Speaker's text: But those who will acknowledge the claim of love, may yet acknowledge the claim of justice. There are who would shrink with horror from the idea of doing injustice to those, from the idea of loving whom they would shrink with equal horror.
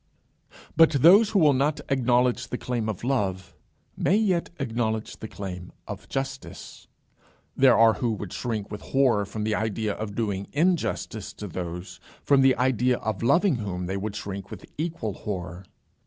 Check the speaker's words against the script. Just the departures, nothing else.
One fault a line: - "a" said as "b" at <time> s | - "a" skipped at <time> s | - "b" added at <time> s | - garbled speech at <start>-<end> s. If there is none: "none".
- "not" added at 1.5 s